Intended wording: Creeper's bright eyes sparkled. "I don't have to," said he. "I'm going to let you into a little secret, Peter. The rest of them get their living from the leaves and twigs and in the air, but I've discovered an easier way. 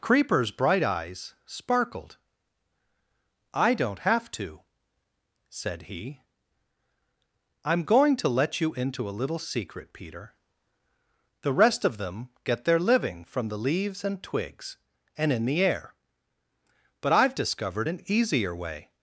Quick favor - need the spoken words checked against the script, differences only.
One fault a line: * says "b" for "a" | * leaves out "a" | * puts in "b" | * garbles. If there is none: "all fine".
all fine